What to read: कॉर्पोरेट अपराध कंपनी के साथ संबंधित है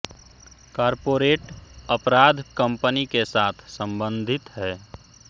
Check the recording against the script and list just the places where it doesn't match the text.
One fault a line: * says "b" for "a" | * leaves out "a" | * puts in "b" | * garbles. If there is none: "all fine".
all fine